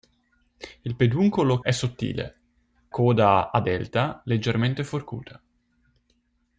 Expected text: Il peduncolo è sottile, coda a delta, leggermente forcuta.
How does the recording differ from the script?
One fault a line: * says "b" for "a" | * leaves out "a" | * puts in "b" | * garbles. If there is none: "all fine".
all fine